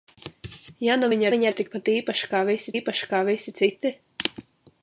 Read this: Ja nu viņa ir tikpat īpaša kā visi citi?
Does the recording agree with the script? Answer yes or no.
no